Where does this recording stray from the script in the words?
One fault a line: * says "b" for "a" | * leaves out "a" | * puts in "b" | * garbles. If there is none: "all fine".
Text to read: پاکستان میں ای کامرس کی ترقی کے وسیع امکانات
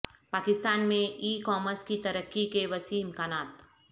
all fine